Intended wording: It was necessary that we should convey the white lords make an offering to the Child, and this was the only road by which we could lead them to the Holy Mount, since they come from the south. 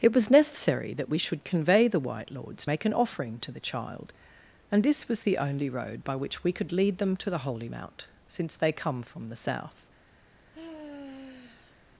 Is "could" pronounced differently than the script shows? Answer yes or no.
no